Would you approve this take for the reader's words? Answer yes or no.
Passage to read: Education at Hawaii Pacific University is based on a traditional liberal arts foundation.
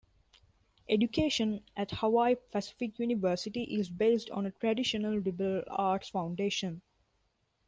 yes